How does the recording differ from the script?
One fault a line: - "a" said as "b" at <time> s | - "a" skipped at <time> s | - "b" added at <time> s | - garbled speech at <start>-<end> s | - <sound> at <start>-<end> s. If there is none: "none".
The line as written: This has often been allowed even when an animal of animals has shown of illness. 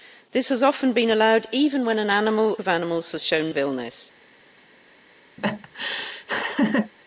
- laugh at 5.4-6.9 s